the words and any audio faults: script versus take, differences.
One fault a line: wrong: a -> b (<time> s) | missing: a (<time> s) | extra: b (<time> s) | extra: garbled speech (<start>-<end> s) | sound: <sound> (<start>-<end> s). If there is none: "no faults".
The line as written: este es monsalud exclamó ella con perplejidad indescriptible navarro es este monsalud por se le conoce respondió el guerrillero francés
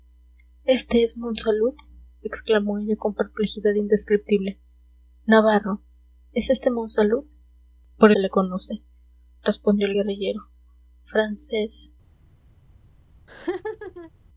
sound: laugh (13.3-14.1 s)